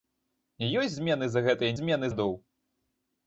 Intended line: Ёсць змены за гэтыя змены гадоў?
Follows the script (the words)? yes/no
yes